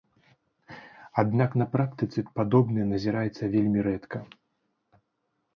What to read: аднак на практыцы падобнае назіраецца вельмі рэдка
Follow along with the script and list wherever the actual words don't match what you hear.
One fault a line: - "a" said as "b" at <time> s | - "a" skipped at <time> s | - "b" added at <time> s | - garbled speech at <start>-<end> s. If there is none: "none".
none